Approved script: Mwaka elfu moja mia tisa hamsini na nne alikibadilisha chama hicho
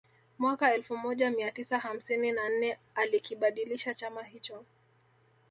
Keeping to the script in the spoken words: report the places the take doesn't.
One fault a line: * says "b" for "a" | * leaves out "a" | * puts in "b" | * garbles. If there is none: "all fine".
all fine